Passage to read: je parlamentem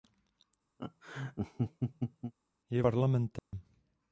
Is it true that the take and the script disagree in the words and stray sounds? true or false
true